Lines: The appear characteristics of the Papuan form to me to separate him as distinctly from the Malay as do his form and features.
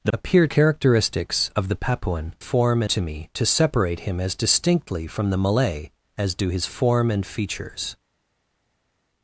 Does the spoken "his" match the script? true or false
true